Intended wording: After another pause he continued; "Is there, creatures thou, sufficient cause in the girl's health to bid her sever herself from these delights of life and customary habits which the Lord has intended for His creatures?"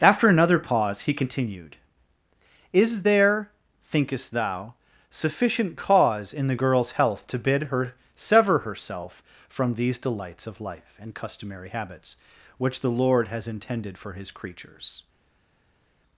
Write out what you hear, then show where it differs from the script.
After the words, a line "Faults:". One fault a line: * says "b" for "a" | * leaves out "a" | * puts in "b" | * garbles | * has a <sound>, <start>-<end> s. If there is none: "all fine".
After another pause he continued; "Is there, thinkest thou, sufficient cause in the girl's health to bid her sever herself from these delights of life and customary habits which the Lord has intended for His creatures?"
Faults:
* says "thinkest" for "creatures"